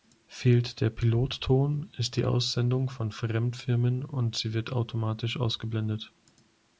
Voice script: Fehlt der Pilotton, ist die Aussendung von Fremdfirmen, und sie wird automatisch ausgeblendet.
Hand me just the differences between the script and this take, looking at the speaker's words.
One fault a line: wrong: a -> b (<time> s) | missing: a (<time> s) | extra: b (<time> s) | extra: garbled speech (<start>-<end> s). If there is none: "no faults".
no faults